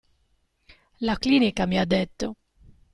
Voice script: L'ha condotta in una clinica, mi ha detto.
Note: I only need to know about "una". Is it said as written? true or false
false